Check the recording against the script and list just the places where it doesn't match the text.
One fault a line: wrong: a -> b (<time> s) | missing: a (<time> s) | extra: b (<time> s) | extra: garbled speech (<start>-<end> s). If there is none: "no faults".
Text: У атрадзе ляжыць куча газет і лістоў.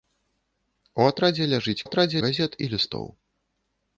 wrong: куча -> атрадзе (1.8 s)